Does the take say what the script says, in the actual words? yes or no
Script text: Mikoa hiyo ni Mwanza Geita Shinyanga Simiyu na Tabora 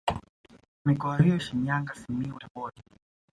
no